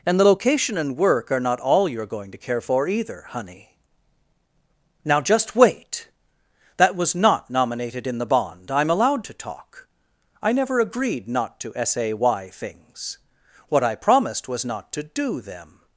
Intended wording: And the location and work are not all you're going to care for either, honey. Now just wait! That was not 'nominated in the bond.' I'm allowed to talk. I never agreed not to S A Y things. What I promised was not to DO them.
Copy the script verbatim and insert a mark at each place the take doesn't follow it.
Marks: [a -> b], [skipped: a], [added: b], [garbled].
And the location and work are not all you're going to care for either, honey. Now just wait! That was not 'nominated in the bond.' I'm allowed to talk. I never agreed not to S A Y things. What I promised was not to DO them.